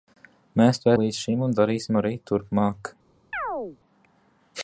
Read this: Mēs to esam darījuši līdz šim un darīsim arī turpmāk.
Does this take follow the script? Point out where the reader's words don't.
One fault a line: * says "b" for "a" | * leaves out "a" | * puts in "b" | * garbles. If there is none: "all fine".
* leaves out "esam darījuši"